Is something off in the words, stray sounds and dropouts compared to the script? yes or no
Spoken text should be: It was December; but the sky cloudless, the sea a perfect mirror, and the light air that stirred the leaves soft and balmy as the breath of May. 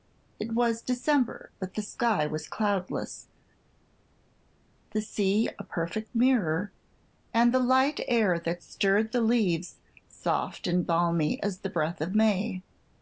yes